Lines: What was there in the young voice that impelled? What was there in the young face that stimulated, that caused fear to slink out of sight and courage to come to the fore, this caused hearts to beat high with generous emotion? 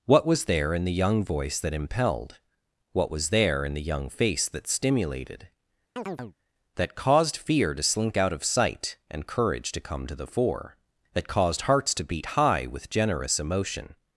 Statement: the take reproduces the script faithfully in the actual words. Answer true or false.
false